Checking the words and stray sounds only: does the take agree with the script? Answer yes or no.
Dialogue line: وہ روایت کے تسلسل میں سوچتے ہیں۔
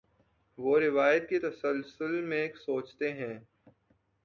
yes